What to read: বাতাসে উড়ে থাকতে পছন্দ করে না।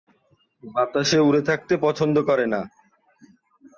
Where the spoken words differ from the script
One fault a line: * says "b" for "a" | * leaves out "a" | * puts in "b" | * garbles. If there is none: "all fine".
all fine